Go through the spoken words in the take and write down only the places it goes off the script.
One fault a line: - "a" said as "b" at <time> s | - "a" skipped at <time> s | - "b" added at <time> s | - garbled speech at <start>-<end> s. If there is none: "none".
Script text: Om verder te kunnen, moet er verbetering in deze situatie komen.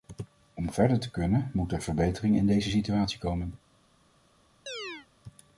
none